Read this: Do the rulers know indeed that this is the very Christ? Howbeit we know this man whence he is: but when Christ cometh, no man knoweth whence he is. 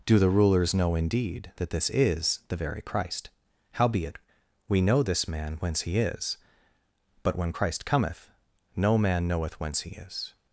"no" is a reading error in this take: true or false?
false